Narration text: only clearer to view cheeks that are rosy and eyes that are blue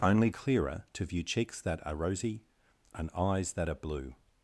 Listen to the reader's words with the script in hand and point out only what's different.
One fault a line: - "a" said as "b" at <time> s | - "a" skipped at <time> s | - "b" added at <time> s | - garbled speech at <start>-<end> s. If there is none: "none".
none